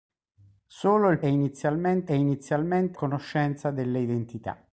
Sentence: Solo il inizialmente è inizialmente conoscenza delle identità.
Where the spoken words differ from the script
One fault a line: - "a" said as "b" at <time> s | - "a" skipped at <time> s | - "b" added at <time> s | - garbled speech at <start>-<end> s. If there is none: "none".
none